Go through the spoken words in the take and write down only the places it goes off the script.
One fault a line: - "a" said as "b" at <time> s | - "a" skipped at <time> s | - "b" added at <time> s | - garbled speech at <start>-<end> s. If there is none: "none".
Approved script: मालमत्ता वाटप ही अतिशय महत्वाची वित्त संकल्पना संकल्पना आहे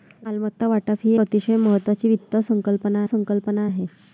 none